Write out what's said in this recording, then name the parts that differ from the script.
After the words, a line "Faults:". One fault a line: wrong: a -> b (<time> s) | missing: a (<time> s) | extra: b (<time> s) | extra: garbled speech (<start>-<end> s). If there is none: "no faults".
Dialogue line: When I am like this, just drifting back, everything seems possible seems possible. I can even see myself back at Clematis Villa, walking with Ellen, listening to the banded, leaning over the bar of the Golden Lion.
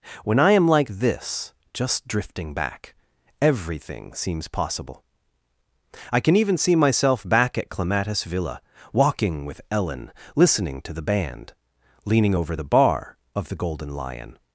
When I am like this, just drifting back, everything seems possible. I can even see myself back at Clematis Villa, walking with Ellen, listening to the band, leaning over the bar of the Golden Lion.
Faults:
missing: seems possible (5.0 s)
wrong: banded -> band (11.0 s)